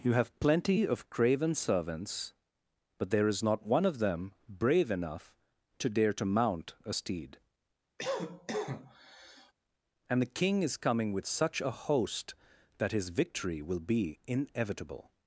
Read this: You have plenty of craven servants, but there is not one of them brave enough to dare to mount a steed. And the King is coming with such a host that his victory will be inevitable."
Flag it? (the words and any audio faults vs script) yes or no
yes